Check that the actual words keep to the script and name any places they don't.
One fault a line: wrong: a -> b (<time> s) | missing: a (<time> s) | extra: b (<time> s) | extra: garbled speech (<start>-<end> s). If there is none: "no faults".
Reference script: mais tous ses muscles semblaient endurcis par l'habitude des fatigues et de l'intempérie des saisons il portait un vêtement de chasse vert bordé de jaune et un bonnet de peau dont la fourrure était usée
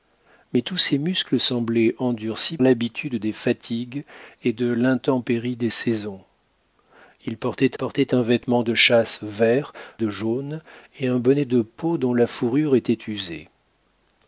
missing: par (2.6 s)
extra: portait (7.7 s)
missing: bordé (9.7 s)